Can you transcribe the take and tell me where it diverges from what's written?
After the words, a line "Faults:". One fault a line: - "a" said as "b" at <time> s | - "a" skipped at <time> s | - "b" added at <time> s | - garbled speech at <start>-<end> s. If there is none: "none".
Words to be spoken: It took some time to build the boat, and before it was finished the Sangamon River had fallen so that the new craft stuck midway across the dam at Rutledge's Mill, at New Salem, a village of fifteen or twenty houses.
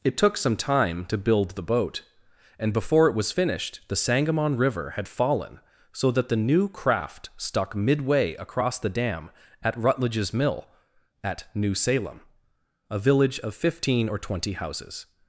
It took some time to build the boat, and before it was finished the Sangamon River had fallen so that the new craft stuck midway across the dam at Rutledge's Mill, at New Salem, a village of fifteen or twenty houses.
Faults:
none